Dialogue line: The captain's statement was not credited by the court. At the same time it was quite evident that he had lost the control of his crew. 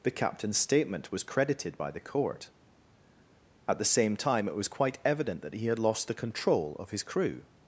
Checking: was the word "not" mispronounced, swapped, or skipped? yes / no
yes